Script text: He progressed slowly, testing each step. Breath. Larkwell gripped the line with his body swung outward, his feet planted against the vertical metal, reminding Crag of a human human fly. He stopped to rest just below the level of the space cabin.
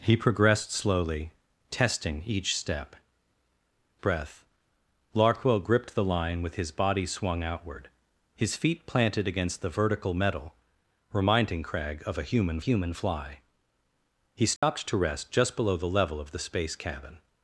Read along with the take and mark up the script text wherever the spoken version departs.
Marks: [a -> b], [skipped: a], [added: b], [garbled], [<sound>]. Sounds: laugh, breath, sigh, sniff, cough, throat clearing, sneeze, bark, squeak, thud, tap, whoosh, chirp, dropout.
He progressed slowly, testing each step. Breath. Larkwell gripped the line with his body swung outward, his feet planted against the vertical metal, reminding Crag of a human human fly. He stopped [dropout] to rest just below the level of the space cabin.